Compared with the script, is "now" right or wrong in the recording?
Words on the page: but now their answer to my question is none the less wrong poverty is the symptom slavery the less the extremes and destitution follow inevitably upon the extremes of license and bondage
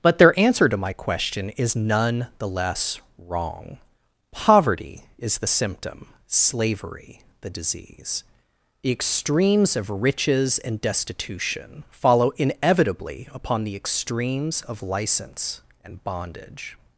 wrong